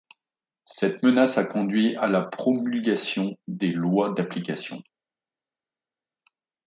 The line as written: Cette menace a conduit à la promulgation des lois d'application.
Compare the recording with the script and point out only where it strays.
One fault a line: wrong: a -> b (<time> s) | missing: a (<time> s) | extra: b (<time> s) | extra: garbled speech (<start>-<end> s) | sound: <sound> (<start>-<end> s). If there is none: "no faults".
no faults